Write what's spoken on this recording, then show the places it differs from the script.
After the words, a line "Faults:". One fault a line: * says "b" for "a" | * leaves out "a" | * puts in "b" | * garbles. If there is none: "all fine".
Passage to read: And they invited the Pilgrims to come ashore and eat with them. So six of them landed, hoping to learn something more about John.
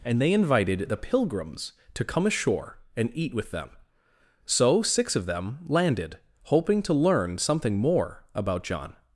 And they invited the Pilgrims to come ashore and eat with them. So six of them landed, hoping to learn something more about John.
Faults:
all fine